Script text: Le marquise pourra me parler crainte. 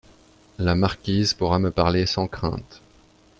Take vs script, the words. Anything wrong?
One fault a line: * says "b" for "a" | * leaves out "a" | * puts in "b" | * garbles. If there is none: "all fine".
* says "La" for "Le"
* puts in "sans"